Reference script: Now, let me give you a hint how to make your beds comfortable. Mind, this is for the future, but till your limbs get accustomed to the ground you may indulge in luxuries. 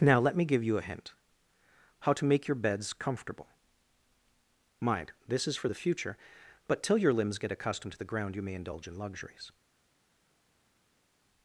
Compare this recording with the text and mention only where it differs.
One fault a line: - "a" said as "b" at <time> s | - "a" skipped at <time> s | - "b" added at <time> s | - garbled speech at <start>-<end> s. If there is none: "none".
none